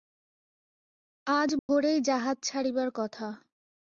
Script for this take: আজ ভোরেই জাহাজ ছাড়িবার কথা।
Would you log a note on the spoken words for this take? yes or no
no